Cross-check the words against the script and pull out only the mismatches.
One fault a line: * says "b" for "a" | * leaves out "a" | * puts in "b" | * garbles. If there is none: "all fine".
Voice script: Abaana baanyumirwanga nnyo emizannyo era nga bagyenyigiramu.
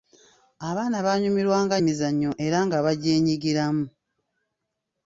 * leaves out "nnyo"